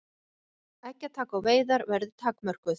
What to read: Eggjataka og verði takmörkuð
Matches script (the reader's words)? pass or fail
fail